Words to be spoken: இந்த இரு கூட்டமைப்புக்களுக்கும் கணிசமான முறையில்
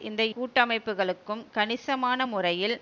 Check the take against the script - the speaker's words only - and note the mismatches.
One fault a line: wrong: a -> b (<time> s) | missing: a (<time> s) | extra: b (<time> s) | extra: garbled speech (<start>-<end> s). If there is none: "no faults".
missing: இரு (0.2 s)